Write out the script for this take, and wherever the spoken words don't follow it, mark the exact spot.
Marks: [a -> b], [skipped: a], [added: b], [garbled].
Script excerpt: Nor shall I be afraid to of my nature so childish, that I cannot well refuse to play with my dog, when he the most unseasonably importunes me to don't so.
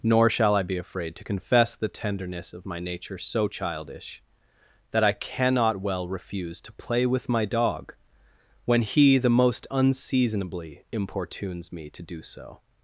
Nor shall I be afraid to [added: confess the tenderness] of my nature so childish, that I cannot well refuse to play with my dog, when he the most unseasonably importunes me to [don't -> do] so.